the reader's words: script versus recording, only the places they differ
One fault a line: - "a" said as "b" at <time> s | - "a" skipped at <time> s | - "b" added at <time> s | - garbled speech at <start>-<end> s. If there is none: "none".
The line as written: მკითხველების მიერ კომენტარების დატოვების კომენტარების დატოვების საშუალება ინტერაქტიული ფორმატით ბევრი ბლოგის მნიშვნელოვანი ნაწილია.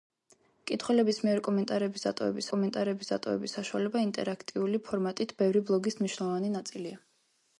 none